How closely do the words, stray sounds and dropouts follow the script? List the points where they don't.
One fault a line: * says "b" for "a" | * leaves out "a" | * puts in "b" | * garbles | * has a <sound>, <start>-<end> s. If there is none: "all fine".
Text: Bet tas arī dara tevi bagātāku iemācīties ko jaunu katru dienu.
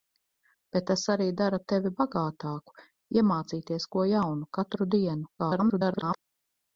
* garbles